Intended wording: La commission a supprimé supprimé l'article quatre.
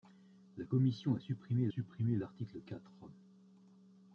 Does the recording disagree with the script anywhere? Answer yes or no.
no